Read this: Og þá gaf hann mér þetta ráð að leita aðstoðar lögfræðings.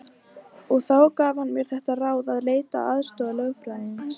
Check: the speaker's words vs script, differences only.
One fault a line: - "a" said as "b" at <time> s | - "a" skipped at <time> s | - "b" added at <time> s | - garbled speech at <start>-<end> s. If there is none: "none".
none